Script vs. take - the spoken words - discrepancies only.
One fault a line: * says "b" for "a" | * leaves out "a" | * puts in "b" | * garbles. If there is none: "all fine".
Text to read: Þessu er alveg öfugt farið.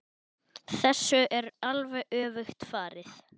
all fine